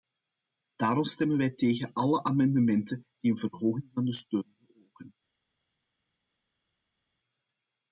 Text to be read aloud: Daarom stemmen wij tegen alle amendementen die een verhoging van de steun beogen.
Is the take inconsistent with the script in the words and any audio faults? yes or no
no